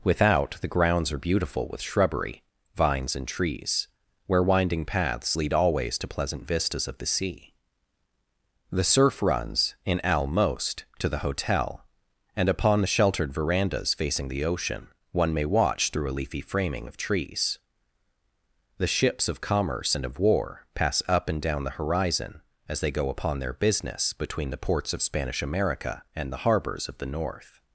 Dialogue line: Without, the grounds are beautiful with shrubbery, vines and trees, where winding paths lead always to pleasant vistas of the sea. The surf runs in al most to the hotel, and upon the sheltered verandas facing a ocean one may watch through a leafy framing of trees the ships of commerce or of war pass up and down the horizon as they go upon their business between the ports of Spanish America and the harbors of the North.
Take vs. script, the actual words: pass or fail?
fail